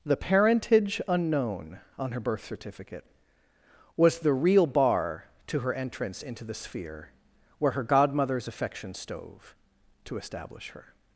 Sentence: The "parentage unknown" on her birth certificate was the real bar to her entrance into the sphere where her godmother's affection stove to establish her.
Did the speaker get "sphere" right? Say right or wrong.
right